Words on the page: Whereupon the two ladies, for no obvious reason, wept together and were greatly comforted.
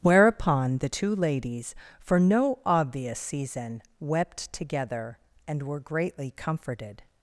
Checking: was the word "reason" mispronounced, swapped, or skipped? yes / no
yes